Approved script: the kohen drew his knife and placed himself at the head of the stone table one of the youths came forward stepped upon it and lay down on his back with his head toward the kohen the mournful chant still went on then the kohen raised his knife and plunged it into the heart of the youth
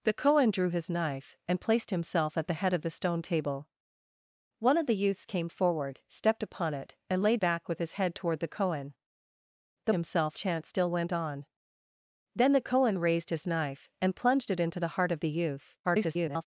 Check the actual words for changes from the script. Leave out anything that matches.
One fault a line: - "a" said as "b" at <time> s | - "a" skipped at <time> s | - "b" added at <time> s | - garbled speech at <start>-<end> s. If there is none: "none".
- "down on his" skipped at 7.4 s
- "mournful" said as "himself" at 9.9 s
- garbled speech at 15.8-16.5 s